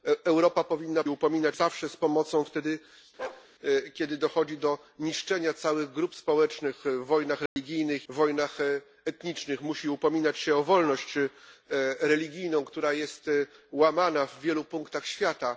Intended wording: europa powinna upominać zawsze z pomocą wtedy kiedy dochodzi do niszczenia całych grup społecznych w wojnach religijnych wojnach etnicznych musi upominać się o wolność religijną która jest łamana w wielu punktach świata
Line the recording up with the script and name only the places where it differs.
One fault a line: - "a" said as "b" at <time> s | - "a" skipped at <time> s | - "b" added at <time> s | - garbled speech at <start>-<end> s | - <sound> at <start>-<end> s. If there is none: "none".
- bark at 3.2-3.5 s
- dropout at 7.5-7.6 s